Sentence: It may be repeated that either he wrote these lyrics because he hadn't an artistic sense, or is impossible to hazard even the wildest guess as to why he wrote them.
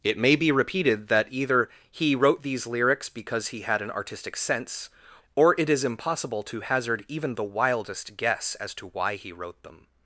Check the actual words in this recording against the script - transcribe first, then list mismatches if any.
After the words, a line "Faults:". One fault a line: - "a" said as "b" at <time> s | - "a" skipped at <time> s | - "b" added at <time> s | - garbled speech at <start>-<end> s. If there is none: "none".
It may be repeated that either he wrote these lyrics because he had an artistic sense, or it is impossible to hazard even the wildest guess as to why he wrote them.
Faults:
- "hadn't" said as "had" at 3.6 s
- "it" added at 5.6 s